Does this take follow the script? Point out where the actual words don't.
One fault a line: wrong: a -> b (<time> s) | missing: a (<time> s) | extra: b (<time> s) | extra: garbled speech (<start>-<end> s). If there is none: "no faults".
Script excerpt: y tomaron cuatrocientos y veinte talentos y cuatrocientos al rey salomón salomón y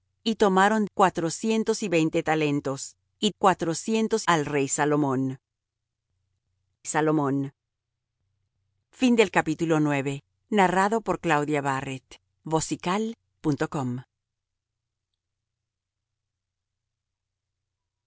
no faults